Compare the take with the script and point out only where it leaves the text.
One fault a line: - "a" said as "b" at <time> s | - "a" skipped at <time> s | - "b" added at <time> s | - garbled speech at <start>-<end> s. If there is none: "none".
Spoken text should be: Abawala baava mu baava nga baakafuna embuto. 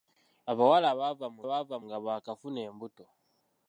none